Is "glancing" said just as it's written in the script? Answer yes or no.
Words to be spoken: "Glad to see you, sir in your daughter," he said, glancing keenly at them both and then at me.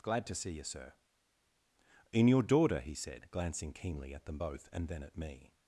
yes